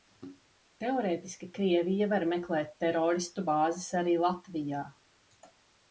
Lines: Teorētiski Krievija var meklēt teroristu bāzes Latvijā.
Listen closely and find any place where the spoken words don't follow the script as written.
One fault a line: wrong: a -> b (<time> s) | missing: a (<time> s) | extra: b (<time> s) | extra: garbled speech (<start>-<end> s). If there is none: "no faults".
extra: arī (4.0 s)